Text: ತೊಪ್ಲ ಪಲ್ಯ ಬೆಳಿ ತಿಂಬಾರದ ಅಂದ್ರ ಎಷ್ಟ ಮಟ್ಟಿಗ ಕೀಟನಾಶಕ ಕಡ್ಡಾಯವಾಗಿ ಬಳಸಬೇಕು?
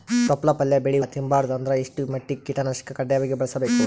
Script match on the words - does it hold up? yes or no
yes